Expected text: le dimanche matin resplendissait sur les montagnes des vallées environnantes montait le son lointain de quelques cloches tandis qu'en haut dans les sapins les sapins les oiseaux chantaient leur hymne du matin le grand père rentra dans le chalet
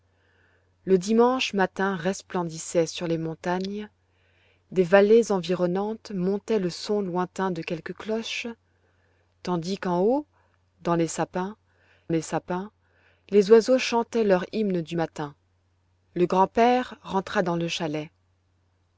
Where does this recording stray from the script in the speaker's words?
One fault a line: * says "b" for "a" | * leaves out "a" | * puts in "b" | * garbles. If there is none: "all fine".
all fine